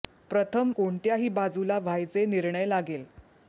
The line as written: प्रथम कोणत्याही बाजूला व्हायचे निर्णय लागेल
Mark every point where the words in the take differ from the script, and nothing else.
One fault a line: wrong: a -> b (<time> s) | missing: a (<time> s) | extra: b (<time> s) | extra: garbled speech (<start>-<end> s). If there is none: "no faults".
no faults